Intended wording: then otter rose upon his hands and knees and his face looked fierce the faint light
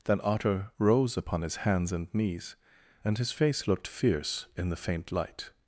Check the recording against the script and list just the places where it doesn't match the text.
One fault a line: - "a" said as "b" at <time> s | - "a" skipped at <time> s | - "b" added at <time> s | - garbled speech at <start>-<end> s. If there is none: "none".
- "in" added at 4.6 s